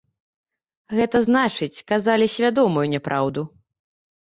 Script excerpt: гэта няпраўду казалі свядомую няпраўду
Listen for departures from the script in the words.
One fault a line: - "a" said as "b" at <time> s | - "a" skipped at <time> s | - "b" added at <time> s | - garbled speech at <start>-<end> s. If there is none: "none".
- "няпраўду" said as "значыць" at 1.3 s